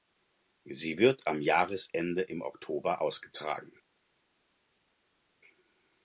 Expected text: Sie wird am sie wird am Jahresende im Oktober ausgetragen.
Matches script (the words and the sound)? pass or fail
fail